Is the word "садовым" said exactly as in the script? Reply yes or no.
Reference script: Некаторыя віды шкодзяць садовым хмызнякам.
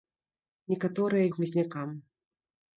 no